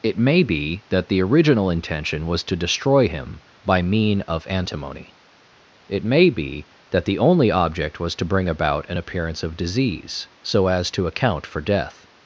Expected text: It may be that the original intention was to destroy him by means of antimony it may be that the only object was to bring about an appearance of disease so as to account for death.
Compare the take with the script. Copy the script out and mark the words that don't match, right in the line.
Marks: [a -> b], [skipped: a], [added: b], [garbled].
It may be that the original intention was to destroy him by [means -> mean] of antimony it may be that the only object was to bring about an appearance of disease so as to account for death.